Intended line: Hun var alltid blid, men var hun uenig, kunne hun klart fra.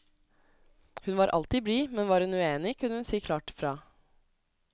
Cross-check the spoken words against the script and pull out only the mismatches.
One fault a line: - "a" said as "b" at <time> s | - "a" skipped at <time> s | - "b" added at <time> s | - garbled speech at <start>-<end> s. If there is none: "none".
- "si" added at 3.1 s